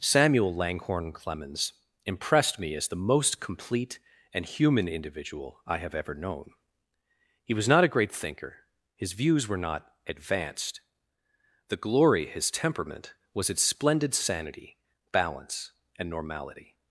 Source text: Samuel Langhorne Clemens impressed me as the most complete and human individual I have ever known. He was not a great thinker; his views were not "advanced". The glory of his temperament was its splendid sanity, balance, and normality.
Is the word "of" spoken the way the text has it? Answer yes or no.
no